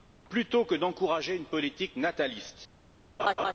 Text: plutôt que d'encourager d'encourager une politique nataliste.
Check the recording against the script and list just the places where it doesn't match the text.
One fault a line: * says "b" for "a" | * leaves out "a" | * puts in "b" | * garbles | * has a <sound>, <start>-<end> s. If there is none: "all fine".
* leaves out "d'encourager"
* has a laugh, 3.2-3.5 s